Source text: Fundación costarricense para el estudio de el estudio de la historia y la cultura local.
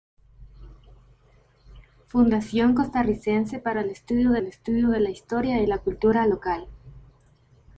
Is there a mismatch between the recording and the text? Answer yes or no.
no